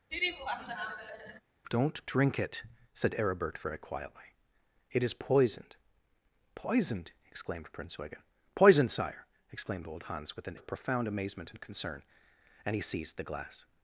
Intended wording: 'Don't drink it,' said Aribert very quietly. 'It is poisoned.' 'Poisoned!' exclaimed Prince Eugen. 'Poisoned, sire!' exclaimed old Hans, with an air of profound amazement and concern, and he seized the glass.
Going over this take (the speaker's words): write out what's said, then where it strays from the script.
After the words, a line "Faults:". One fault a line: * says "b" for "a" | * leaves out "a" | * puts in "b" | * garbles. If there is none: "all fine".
'Don't drink it,' said Aribert very quietly. 'It is poisoned.' 'Poisoned!' exclaimed Prince Eugen. 'Poisoned, sire!' exclaimed old Hans, with an of profound amazement and concern, and he seized the glass.
Faults:
* leaves out "air"